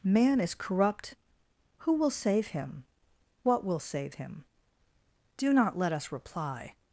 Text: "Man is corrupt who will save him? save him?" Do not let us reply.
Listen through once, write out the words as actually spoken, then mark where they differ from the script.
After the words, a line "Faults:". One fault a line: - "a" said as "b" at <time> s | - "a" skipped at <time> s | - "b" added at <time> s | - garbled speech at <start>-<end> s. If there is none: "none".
"Man is corrupt who will save him? what will save him?" Do not let us reply.
Faults:
- "what will" added at 3.4 s